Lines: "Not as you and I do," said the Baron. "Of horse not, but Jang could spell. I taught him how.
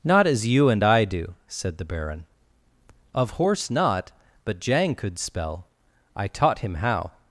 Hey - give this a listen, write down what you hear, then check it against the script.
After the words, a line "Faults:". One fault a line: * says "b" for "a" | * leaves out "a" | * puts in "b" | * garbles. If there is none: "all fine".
"Not as you and I do," said the Baron. "Of horse not, but Jang could spell. I taught him how.
Faults:
all fine